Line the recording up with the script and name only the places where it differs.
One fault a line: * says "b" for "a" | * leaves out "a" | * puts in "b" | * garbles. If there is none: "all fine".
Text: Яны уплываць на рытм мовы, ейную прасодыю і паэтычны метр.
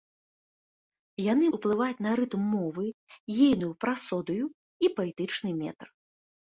all fine